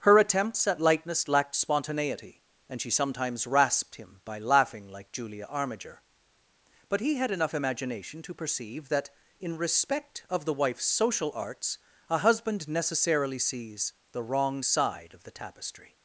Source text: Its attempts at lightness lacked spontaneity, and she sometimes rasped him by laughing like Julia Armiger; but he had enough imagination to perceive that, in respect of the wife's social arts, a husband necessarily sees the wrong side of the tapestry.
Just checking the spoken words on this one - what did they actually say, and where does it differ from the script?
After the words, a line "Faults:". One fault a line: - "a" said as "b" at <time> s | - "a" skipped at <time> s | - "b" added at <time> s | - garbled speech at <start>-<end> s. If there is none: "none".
Her attempts at lightness lacked spontaneity, and she sometimes rasped him by laughing like Julia Armiger; but he had enough imagination to perceive that, in respect of the wife's social arts, a husband necessarily sees the wrong side of the tapestry.
Faults:
- "Its" said as "Her" at 0.0 s